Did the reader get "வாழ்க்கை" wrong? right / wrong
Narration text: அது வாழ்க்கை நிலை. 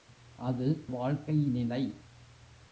right